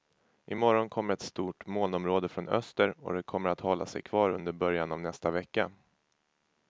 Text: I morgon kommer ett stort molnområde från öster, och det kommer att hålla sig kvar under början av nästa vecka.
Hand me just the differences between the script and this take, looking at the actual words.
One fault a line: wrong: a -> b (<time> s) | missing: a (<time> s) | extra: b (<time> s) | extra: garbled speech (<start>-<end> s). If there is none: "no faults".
no faults